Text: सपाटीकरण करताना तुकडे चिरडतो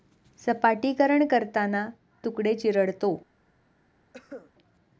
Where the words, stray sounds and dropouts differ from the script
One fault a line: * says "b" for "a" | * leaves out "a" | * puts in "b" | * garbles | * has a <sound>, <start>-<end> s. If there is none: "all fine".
* has a cough, 4.1-4.5 s